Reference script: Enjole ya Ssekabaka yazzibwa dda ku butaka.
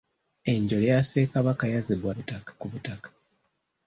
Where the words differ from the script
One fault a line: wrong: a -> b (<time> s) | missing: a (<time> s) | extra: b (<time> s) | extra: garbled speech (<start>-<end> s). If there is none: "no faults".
wrong: dda -> butaka (2.1 s)